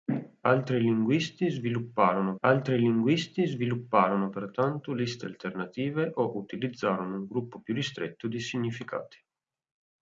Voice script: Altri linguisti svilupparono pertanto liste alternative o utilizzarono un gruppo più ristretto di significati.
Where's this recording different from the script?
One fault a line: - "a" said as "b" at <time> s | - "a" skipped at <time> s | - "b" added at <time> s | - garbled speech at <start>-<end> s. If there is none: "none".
- "altri linguisti svilupparono" added at 2.4 s